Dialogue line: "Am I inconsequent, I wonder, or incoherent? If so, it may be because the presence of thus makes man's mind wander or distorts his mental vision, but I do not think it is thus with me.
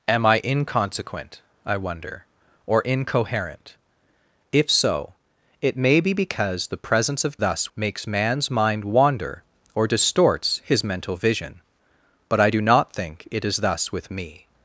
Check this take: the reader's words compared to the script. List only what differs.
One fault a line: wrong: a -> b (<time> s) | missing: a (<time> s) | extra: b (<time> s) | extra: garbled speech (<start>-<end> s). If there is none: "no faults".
no faults